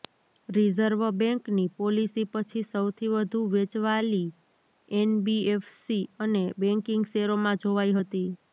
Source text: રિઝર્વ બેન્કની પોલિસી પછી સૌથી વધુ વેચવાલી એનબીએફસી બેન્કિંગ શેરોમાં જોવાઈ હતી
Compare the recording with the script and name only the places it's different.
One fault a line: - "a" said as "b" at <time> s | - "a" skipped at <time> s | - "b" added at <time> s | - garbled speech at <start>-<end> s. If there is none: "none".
- "અને" added at 6.2 s